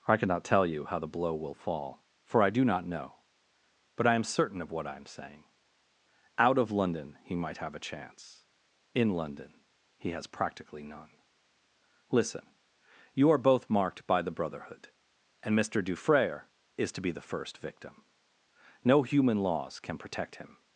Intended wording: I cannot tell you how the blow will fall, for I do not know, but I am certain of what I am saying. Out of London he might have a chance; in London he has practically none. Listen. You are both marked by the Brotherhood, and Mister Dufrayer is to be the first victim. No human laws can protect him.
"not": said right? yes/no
yes